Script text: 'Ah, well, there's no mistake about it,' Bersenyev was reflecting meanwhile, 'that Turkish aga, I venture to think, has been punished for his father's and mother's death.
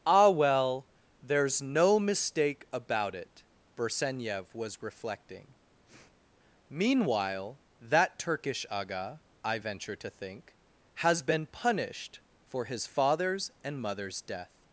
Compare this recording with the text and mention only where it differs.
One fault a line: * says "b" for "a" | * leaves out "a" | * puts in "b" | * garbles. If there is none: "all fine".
all fine